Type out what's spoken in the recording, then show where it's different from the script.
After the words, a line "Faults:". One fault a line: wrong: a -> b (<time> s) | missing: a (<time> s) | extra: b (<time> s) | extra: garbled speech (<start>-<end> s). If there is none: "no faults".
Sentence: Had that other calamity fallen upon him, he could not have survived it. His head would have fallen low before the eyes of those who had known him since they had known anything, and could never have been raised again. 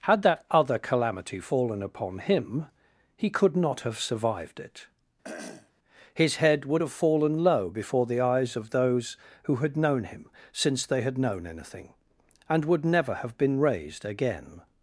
Had that other calamity fallen upon him, he could not have survived it. His head would have fallen low before the eyes of those who had known him since they had known anything, and would never have been raised again.
Faults:
wrong: could -> would (12.6 s)